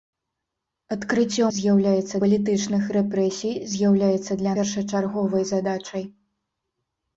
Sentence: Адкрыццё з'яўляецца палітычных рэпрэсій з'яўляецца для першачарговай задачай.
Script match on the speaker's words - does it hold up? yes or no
yes